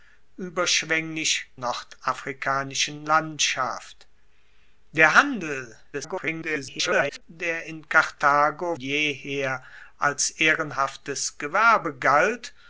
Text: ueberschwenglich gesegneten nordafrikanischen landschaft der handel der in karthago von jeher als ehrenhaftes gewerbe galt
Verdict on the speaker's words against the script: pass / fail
fail